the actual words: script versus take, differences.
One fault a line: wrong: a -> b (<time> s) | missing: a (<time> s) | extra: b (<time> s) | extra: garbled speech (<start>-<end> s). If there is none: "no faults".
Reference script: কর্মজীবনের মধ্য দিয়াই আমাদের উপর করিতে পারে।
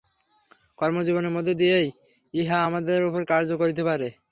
extra: ইহা (2.3 s)
extra: কার্য (3.3 s)